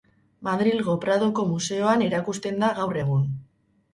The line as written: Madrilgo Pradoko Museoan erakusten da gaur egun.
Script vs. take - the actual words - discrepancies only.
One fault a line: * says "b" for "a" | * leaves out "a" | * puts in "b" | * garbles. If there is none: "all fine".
all fine